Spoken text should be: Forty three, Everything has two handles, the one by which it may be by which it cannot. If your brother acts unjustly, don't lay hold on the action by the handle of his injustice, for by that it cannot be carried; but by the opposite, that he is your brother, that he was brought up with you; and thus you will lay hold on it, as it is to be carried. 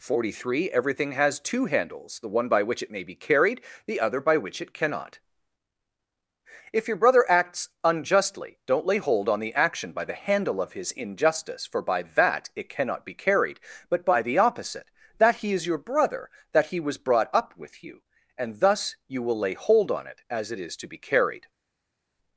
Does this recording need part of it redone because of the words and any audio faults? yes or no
yes